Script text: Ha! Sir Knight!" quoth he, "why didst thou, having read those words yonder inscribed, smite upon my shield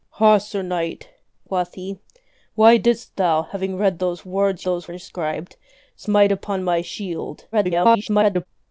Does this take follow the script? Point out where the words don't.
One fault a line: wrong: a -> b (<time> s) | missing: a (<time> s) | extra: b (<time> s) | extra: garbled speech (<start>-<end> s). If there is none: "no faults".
wrong: yonder -> those (4.6 s)
extra: garbled speech (7.5-8.5 s)